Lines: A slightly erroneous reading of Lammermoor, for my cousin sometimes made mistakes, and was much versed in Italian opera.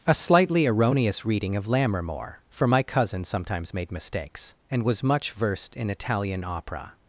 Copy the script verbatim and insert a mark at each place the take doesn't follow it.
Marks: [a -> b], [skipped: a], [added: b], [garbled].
A slightly erroneous reading of Lammermoor, for my cousin sometimes made mistakes, and was much versed in Italian opera.